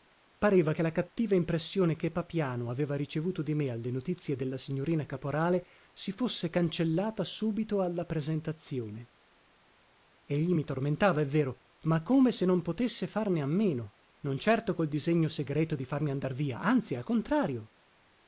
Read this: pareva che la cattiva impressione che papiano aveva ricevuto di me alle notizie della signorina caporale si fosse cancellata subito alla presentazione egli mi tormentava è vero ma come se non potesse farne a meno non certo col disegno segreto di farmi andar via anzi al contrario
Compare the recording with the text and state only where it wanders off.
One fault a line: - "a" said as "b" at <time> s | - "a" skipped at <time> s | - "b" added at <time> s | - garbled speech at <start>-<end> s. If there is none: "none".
none